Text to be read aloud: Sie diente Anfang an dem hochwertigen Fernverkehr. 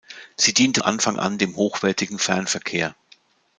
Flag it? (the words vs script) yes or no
no